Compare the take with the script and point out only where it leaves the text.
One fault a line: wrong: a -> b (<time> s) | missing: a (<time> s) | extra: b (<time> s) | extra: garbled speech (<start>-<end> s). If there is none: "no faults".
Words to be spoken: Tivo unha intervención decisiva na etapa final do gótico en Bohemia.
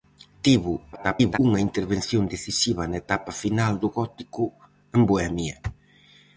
extra: garbled speech (0.9-1.4 s)